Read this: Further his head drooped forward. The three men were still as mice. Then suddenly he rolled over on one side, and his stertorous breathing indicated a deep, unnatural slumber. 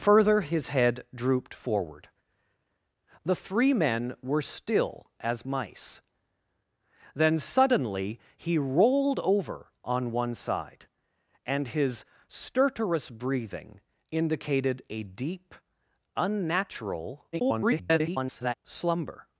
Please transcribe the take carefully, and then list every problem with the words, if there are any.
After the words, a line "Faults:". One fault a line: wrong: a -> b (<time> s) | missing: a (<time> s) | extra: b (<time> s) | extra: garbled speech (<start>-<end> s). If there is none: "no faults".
Further his head drooped forward. The three men were still as mice. Then suddenly he rolled over on one side, and his stertorous breathing indicated a deep, unnatural [garbled] slumber.
Faults:
extra: garbled speech (17.3-18.6 s)